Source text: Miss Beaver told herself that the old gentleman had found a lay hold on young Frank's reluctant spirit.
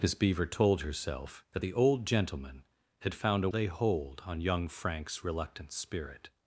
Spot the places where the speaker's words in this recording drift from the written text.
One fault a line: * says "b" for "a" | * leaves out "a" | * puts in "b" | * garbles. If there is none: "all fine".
all fine